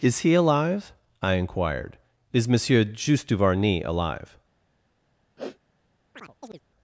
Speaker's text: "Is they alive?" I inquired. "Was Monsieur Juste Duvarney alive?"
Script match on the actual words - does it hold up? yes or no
no